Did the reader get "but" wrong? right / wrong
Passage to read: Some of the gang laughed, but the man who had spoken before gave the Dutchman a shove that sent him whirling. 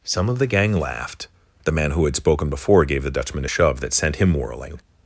wrong